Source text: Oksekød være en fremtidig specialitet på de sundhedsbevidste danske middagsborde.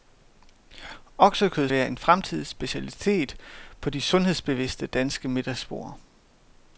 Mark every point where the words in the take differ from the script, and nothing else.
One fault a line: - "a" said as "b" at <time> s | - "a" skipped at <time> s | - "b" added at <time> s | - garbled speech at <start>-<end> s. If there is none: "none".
none